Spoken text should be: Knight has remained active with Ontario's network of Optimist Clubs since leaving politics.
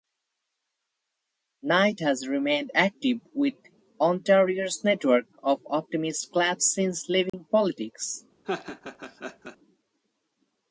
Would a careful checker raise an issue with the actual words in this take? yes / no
no